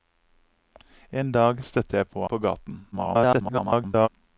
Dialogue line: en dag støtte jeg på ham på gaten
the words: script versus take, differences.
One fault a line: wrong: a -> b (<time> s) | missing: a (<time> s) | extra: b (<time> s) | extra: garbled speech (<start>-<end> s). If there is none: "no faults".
missing: ham (2.2 s)
extra: garbled speech (2.9-4.1 s)